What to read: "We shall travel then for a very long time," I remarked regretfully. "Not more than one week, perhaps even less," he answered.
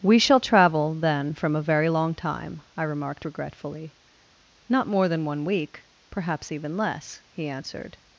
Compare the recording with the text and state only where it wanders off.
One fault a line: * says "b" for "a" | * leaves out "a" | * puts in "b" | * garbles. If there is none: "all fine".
* says "from" for "for"